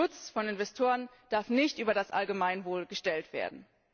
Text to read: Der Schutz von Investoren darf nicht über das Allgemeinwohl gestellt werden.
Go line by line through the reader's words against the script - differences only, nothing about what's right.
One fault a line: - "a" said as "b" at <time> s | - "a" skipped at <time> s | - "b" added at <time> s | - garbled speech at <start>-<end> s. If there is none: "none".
none